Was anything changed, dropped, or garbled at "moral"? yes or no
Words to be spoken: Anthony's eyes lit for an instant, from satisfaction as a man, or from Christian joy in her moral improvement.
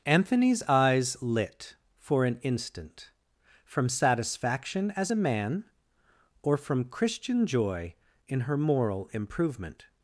no